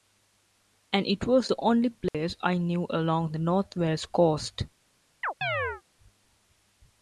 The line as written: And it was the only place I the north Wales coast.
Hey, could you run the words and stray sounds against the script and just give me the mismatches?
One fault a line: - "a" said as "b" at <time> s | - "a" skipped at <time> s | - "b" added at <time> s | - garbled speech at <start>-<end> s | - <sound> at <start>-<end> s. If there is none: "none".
- dropout at 2.1-2.1 s
- "knew along" added at 2.6 s
- chirp at 5.2-5.8 s